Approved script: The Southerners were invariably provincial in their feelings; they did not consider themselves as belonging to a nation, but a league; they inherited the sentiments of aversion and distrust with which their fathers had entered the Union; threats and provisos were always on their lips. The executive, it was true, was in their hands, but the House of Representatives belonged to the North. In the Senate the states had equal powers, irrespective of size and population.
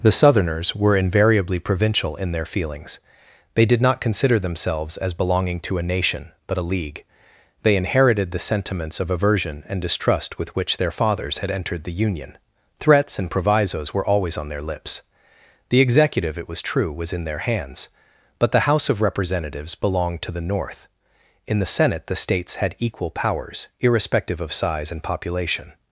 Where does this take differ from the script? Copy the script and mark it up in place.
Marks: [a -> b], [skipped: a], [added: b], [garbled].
The Southerners were invariably provincial in their feelings; they did not consider themselves as belonging to a nation, but a league; they inherited the sentiments of aversion and distrust with which their fathers had entered the Union; threats and provisos were always on their lips. The executive, it was true, was in their hands, but the House of Representatives belonged to the North. In the Senate the states had equal powers, irrespective of size and population.